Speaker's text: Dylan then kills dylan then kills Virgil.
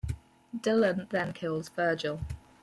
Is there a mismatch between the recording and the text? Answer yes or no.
yes